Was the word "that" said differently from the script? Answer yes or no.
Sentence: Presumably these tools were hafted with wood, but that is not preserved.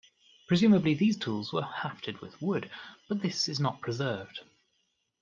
yes